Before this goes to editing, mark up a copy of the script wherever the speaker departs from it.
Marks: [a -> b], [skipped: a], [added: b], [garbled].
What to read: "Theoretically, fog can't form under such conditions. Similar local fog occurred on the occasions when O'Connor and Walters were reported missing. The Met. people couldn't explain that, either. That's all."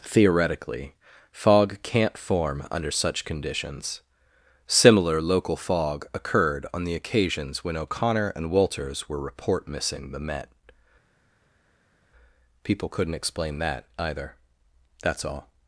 "Theoretically, fog can't form under such conditions. Similar local fog occurred on the occasions when O'Connor and Walters were [reported -> report] missing. The Met. people couldn't explain that, either. That's all."